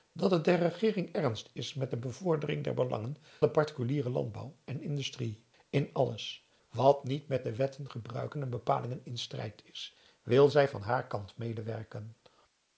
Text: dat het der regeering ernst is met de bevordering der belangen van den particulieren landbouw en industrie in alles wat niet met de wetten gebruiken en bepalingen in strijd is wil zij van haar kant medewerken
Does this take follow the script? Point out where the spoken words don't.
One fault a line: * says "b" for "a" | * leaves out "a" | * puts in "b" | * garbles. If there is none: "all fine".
* leaves out "van"